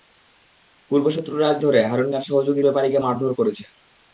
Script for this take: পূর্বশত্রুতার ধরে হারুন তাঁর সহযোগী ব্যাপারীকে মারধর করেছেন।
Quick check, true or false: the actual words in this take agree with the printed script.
true